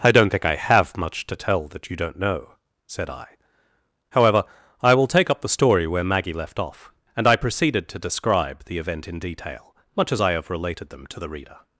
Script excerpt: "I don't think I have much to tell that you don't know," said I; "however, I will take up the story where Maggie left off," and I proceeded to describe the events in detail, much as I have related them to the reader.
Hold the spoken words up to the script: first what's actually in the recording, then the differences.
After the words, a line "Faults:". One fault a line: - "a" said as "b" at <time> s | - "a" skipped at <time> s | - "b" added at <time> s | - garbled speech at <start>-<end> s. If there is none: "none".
"I don't think I have much to tell that you don't know," said I; "however, I will take up the story where Maggie left off," and I proceeded to describe the event in detail, much as I have related them to the reader.
Faults:
- "events" said as "event" at 8.8 s